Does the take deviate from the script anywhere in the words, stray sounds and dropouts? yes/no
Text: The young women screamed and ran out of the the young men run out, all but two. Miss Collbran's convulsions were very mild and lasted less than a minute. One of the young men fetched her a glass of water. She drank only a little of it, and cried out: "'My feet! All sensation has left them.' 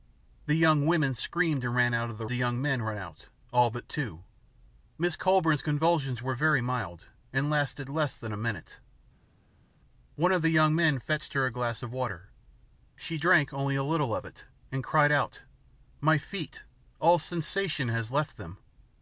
no